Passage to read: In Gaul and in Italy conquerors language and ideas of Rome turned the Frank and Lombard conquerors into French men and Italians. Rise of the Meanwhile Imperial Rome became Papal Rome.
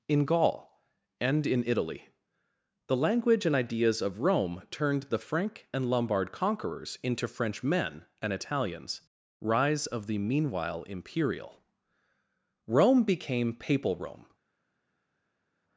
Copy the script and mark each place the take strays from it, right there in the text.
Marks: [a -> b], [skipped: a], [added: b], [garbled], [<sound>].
In Gaul and in Italy [conquerors -> the] language and ideas of Rome turned the Frank and Lombard conquerors into French men and Italians. Rise of the Meanwhile Imperial Rome became Papal Rome.